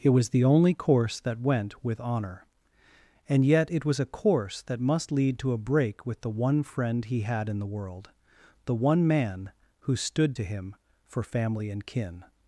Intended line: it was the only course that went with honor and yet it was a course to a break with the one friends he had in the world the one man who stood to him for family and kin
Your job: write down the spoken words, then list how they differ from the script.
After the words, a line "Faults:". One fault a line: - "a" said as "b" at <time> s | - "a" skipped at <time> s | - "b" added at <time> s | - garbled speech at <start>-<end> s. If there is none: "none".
it was the only course that went with honor and yet it was a course that must lead to a break with the one friend he had in the world the one man who stood to him for family and kin
Faults:
- "that must lead" added at 4.6 s
- "friends" said as "friend" at 6.6 s